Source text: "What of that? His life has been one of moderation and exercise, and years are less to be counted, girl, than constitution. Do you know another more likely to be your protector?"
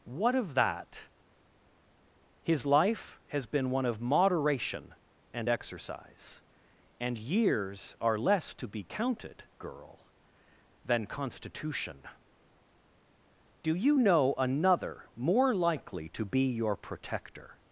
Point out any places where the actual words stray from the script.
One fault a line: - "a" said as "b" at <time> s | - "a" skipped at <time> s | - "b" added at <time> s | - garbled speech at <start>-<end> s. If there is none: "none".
none